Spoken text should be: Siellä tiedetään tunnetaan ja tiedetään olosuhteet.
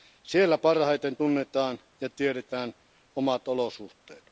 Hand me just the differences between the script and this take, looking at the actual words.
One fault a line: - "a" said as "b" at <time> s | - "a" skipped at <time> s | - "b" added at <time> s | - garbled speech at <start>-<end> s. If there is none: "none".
- "tiedetään" said as "parhaiten" at 0.6 s
- "omat" added at 3.1 s